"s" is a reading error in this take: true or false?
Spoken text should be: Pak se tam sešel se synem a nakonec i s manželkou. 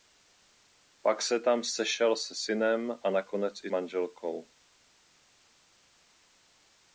true